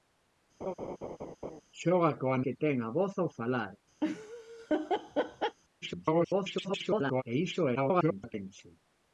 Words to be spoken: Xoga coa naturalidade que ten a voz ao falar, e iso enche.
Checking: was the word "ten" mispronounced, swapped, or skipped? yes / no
no